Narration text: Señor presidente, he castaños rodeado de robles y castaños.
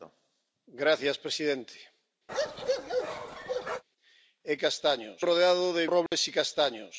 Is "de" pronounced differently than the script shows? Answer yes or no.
no